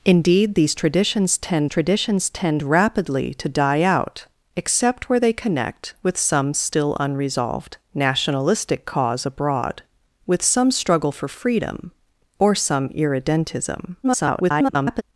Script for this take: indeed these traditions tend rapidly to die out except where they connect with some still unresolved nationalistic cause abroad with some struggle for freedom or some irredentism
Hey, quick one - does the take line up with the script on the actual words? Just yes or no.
no